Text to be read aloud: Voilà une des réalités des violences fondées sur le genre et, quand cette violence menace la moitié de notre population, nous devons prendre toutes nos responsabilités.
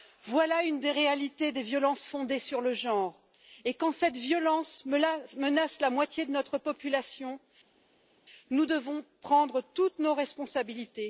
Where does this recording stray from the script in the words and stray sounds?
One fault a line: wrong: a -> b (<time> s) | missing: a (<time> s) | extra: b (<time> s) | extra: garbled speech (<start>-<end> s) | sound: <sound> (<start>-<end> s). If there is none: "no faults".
no faults